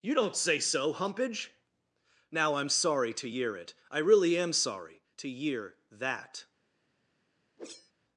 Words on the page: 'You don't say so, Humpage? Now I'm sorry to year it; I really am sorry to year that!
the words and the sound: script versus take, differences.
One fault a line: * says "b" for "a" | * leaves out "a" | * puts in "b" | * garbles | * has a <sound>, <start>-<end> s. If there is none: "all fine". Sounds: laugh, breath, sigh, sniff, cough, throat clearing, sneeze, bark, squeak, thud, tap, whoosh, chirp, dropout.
* has a whoosh, 7.6-7.9 s